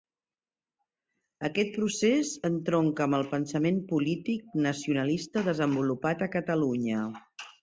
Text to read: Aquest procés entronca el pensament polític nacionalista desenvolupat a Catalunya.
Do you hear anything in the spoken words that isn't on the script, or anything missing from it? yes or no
yes